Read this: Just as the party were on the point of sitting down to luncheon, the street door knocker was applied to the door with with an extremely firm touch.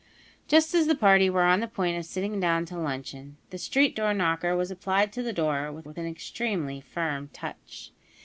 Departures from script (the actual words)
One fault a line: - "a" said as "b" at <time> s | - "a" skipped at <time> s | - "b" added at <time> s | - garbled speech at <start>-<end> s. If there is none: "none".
none